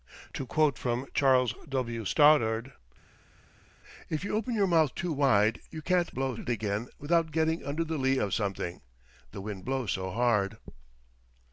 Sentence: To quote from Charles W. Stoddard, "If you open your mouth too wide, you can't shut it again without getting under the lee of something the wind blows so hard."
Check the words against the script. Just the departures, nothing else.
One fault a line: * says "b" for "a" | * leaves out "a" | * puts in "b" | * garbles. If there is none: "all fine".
* says "blows" for "shut"